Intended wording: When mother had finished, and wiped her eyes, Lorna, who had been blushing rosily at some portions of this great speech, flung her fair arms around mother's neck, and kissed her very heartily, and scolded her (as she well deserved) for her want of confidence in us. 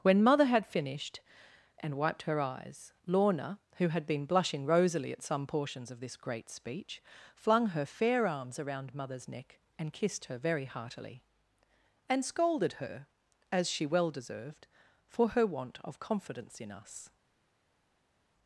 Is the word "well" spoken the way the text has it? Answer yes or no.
yes